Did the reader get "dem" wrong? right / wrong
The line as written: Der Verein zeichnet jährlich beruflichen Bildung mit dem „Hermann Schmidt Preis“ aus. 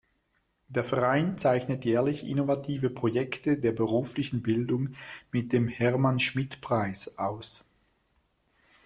right